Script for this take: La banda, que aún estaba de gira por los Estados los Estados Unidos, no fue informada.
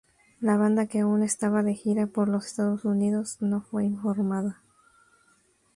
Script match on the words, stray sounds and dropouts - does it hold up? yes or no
no